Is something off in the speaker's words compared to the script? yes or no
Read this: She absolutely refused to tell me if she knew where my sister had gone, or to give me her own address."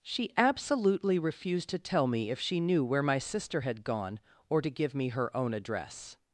no